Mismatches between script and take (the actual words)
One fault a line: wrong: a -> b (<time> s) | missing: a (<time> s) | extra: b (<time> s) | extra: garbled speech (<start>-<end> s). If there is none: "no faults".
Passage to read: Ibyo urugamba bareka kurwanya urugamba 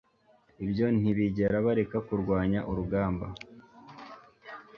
wrong: urugamba -> ntibigera (1.0 s)